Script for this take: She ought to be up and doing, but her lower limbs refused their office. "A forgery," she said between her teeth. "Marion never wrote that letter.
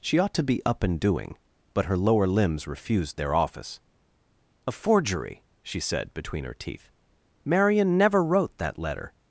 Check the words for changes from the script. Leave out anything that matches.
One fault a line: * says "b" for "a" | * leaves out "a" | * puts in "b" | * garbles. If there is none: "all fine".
all fine